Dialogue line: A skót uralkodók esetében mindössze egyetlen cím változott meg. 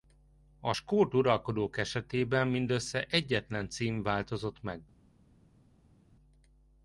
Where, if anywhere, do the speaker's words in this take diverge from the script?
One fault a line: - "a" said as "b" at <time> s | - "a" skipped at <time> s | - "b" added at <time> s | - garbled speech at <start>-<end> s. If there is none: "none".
none